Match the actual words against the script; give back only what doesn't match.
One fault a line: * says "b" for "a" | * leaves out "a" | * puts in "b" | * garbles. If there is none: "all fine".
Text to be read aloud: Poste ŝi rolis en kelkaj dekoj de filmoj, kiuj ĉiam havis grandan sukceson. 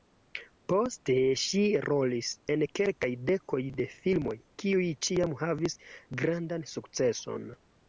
all fine